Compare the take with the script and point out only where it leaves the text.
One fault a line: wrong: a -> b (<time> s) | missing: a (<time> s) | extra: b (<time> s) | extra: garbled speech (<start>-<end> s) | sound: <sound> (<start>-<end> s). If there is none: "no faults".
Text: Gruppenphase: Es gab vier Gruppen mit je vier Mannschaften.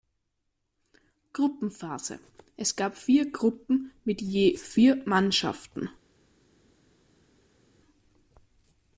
no faults